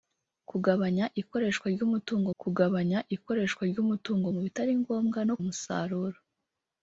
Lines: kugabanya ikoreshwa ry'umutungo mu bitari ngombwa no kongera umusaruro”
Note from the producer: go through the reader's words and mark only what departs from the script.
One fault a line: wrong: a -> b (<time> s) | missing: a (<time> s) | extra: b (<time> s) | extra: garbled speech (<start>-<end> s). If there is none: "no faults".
extra: kugabanya ikoreshwa ry'umutungo (2.4 s)
missing: kongera (5.3 s)